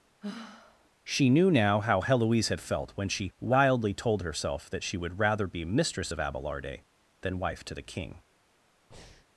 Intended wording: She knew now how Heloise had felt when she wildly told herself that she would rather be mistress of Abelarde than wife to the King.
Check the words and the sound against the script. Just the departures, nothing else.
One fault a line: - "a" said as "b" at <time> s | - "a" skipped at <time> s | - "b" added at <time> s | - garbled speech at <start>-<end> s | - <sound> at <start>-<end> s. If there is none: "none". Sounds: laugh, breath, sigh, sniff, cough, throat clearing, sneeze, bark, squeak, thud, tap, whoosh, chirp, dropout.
- sigh at 0.2-0.9 s
- breath at 8.9-9.3 s